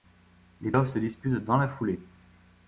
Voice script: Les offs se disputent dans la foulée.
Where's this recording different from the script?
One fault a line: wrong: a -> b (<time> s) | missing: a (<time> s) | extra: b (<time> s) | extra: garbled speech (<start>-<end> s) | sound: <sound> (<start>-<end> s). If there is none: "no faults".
no faults